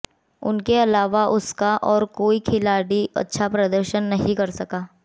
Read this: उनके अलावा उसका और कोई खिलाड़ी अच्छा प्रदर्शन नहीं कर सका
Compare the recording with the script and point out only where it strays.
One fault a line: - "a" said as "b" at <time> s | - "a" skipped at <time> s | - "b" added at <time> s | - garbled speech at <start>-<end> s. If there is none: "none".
none